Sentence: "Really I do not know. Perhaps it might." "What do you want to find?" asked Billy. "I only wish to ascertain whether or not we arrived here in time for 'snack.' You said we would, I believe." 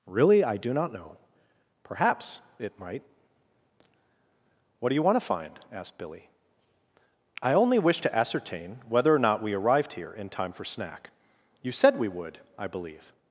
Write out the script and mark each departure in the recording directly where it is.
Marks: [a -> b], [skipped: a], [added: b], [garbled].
"Really I do not know. Perhaps it might." "What do you want to find?" asked Billy. "I only wish to ascertain whether or not we arrived here in time for 'snack.' You said we would, I believe."